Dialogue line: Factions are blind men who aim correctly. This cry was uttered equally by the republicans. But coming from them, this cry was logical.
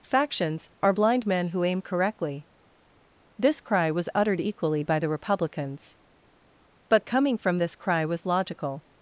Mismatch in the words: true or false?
true